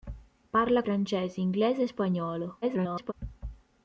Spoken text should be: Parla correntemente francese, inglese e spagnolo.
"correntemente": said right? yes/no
no